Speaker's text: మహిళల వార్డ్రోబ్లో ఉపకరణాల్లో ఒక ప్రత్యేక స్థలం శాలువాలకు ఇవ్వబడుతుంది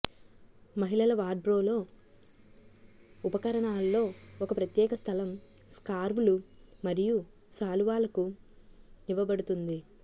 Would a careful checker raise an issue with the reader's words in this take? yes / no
yes